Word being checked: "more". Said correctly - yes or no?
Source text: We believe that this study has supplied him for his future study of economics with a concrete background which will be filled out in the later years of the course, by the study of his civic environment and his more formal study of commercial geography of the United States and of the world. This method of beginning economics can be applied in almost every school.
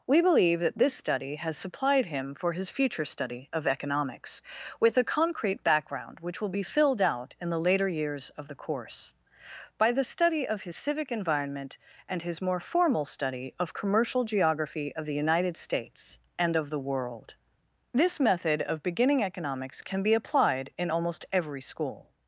yes